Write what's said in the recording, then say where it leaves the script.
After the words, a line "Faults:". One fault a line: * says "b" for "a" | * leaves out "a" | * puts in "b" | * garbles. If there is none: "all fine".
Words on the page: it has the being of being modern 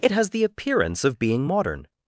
it has the appearance of being modern
Faults:
* says "appearance" for "being"